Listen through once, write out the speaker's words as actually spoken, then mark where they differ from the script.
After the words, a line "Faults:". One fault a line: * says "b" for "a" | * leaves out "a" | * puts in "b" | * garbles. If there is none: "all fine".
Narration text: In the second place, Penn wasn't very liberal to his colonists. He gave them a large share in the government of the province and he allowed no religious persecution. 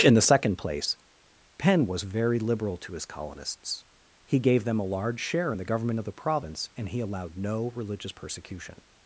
In the second place, Penn was very liberal to his colonists. He gave them a large share in the government of the province and he allowed no religious persecution.
Faults:
* says "was" for "wasn't"